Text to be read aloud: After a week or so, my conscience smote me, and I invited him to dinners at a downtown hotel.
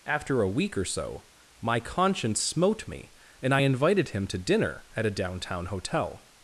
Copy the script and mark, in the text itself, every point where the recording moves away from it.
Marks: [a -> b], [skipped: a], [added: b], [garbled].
After a week or so, my conscience smote me, and I invited him to [dinners -> dinner] at a downtown hotel.